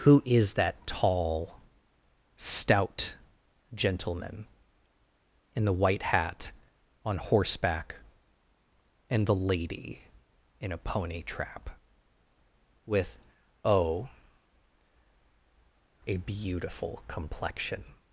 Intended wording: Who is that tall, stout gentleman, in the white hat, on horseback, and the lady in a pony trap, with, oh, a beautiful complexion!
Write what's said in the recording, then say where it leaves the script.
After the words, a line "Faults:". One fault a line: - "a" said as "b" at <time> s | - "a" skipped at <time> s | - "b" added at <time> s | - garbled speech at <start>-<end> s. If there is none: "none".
Who is that tall, stout gentleman, in the white hat, on horseback, and the lady in a pony trap, with, oh, a beautiful complexion!
Faults:
none